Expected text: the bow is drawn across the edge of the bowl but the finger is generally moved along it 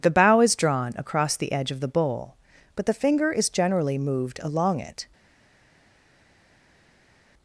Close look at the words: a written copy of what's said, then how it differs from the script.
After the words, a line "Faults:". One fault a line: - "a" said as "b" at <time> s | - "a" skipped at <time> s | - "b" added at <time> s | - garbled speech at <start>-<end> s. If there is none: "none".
the bow is drawn across the edge of the bowl but the finger is generally moved along it
Faults:
none